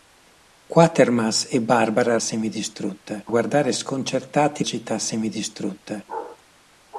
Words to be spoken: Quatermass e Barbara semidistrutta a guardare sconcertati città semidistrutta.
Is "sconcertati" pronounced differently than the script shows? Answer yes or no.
no